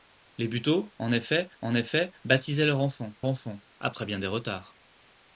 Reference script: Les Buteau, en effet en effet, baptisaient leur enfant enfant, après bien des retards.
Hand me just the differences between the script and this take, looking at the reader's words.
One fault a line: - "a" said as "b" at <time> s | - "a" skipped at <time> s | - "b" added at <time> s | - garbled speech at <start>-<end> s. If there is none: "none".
none